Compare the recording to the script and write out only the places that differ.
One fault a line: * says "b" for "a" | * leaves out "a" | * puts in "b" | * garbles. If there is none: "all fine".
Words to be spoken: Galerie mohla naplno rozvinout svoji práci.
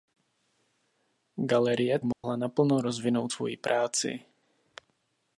all fine